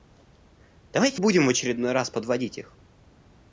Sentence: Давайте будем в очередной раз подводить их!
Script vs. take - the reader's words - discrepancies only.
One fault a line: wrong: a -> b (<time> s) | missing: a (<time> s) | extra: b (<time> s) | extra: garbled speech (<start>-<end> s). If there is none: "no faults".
no faults